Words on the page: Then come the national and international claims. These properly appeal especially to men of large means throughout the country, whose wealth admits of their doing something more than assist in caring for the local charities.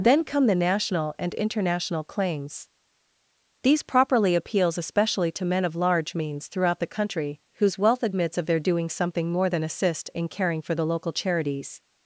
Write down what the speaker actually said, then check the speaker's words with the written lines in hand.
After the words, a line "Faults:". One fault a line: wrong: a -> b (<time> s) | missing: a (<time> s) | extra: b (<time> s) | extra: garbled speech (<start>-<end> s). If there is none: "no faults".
Then come the national and international claims. These properly appeals especially to men of large means throughout the country, whose wealth admits of their doing something more than assist in caring for the local charities.
Faults:
wrong: appeal -> appeals (4.3 s)